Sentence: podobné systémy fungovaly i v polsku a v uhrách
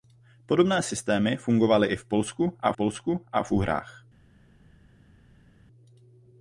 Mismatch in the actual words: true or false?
true